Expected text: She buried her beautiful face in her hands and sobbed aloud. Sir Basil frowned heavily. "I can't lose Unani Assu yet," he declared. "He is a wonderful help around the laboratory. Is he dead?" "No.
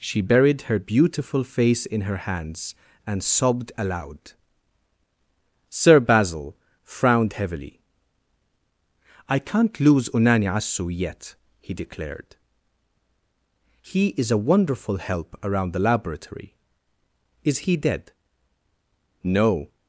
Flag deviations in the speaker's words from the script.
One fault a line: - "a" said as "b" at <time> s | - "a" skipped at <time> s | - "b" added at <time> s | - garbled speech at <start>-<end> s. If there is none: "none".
none